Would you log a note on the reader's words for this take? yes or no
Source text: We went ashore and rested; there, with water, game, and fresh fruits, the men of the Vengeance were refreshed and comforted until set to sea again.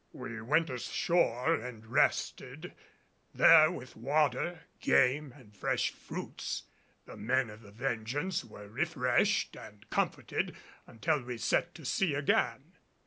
yes